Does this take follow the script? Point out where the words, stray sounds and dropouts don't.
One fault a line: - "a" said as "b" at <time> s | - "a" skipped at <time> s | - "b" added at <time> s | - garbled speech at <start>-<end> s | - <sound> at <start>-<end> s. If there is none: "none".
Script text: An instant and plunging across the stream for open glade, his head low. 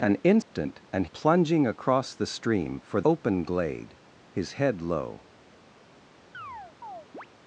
- dropout at 0.4-0.5 s
- chirp at 6.3-7.3 s